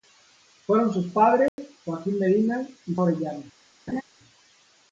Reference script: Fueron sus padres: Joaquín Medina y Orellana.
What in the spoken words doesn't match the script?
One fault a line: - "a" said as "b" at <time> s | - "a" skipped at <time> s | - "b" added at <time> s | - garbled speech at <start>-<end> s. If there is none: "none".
none